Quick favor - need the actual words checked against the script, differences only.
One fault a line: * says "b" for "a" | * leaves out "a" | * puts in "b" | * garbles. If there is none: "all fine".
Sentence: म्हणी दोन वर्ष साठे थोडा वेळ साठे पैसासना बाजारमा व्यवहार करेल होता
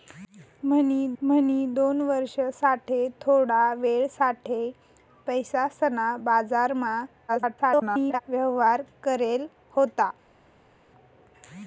* puts in "म्हणी"
* garbles